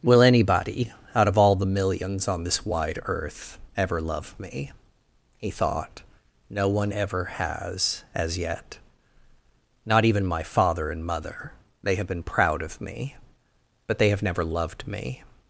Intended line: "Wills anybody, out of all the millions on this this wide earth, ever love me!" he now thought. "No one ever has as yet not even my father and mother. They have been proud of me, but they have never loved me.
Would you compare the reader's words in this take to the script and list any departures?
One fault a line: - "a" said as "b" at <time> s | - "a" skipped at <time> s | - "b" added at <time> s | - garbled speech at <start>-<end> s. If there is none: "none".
- "Wills" said as "Will" at 0.0 s
- "this" skipped at 2.6 s
- "now" skipped at 5.5 s